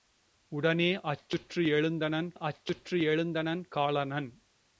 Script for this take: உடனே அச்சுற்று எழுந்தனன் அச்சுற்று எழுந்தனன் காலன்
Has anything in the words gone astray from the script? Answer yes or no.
no